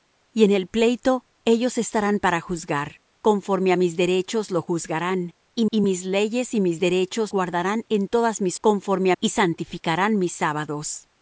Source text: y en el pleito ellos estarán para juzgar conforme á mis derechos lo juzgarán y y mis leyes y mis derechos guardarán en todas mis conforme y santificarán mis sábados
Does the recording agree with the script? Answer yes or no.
yes